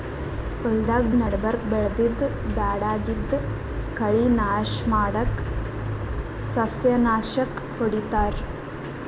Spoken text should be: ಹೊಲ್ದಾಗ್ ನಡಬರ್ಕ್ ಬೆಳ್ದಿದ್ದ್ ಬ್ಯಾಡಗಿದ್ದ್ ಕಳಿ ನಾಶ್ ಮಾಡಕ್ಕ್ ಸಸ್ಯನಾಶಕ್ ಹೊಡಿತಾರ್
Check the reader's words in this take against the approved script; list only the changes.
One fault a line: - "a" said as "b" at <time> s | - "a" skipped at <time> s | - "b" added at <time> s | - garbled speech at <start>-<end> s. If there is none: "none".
none